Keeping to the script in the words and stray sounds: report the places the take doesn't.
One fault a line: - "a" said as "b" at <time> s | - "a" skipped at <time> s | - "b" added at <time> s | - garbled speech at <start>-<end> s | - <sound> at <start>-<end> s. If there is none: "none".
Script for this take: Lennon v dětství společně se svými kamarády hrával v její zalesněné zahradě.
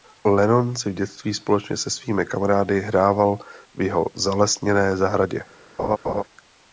- "si" added at 0.8 s
- "její" said as "jeho" at 3.8 s
- laugh at 5.8-6.2 s